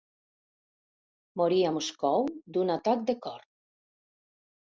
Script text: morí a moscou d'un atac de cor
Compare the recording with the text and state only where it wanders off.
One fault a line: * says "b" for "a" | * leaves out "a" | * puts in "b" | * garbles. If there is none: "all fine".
all fine